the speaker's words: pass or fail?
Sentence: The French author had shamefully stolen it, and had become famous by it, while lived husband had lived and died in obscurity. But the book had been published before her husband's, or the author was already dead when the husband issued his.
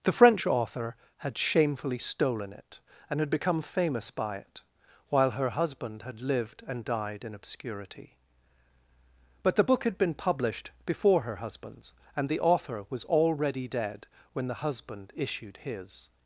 fail